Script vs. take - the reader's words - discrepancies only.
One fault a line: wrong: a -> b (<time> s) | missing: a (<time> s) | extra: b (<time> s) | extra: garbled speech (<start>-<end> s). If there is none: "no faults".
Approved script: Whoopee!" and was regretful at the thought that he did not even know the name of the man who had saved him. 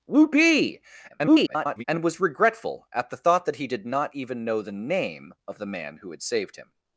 extra: garbled speech (1.1-1.8 s)